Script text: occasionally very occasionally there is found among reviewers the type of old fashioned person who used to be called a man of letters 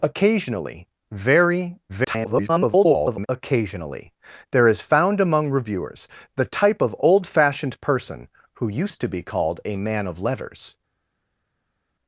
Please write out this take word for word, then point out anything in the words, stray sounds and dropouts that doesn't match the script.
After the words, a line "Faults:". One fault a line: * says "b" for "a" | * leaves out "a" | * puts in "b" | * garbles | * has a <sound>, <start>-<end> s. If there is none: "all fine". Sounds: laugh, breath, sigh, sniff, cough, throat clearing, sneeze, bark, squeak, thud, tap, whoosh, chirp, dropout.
occasionally very [garbled] occasionally there is found among reviewers the type of old fashioned person who used to be called a man of letters
Faults:
* garbles